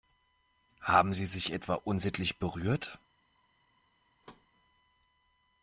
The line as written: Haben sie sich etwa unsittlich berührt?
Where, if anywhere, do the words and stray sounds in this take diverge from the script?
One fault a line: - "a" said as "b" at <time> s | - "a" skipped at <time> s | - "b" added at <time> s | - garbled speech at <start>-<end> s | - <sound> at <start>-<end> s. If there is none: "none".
- thud at 4.2-4.5 s